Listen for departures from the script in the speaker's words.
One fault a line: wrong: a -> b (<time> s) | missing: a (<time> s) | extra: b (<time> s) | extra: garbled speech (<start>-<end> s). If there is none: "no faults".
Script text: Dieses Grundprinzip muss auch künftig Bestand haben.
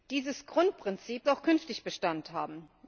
missing: muss (1.3 s)